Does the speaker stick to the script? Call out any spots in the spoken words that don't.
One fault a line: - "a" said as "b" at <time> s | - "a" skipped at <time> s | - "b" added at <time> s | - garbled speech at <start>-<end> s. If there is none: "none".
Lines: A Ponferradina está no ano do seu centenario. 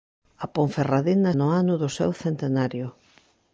- "está" skipped at 1.3 s